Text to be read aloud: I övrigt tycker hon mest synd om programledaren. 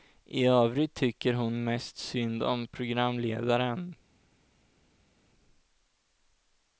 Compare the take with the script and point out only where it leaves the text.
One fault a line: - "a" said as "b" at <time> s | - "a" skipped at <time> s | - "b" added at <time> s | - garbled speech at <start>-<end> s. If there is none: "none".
none